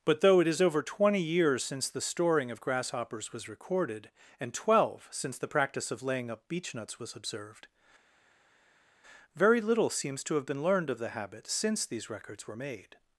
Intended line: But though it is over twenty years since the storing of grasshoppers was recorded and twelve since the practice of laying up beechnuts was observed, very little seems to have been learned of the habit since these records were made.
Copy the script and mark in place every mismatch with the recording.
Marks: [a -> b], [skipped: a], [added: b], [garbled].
But though it is over twenty years since the storing of grasshoppers was recorded and twelve since the practice of laying up beechnuts was observed, very little seems to have been learned of the habit since these records were made.